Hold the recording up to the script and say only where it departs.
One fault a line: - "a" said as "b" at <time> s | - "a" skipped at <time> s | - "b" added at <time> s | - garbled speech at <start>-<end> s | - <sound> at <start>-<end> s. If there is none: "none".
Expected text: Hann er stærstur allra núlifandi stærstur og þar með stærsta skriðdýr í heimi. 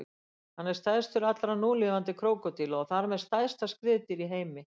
- "stærstur" said as "krókódíla" at 2.2 s